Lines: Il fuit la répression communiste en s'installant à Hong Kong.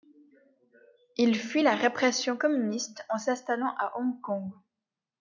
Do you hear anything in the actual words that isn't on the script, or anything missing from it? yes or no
no